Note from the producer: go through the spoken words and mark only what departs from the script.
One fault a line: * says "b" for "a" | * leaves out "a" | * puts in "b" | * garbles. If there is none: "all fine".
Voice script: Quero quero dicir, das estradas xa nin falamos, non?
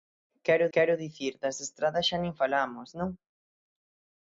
all fine